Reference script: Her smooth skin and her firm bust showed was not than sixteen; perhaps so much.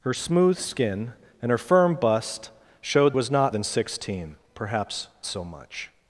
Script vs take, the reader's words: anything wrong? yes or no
no